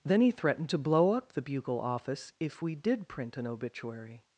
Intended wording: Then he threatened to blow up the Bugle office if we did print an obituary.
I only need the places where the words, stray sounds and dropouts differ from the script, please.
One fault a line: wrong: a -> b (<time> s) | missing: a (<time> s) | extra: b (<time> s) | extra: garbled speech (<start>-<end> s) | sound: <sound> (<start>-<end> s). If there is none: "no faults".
no faults